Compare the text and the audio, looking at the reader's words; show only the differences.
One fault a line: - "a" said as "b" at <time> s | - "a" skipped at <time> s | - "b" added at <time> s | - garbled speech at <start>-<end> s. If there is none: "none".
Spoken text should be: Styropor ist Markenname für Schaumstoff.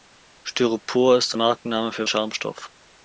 none